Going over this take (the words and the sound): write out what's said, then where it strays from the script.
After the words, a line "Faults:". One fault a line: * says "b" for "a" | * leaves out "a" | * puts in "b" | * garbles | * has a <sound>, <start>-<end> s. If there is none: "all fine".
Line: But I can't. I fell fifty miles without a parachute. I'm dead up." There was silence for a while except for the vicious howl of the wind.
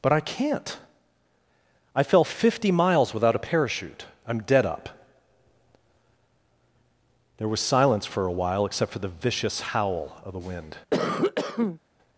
But I can't. I fell fifty miles without a parachute. I'm dead up." There was silence for a while except for the vicious howl of the wind.
Faults:
* has a cough, 10.9-11.8 s